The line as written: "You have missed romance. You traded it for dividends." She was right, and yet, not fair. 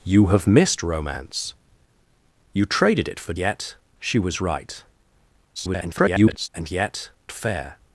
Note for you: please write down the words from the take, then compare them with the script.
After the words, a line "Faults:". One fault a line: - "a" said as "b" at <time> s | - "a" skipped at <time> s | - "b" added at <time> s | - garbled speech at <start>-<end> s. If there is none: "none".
"You have missed romance. You traded it for yet." She was right, [garbled] and yet, fair.
Faults:
- "dividends" said as "yet" at 3.4 s
- garbled speech at 5.6-6.5 s
- "not" skipped at 7.1 s